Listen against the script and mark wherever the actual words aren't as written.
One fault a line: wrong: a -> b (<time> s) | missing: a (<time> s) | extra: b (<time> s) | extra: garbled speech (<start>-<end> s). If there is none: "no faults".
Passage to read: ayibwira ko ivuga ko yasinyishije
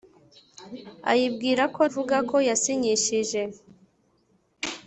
no faults